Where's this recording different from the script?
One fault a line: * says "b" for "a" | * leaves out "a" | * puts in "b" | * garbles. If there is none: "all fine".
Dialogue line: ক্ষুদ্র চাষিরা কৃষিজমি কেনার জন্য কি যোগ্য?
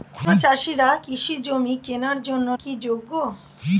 all fine